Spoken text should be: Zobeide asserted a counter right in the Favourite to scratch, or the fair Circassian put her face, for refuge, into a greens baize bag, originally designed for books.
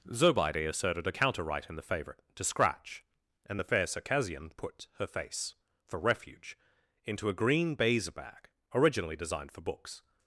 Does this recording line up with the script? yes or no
no